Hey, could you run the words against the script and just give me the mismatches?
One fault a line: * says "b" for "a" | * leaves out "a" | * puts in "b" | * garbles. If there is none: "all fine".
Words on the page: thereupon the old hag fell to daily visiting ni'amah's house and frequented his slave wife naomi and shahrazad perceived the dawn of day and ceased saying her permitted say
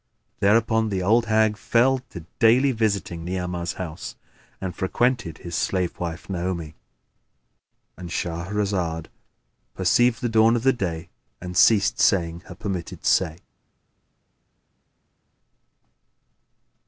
all fine